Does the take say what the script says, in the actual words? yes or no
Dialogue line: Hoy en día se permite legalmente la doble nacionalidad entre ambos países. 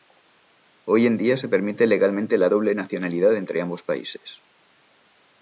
yes